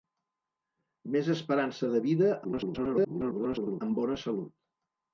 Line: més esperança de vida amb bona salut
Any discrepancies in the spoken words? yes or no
yes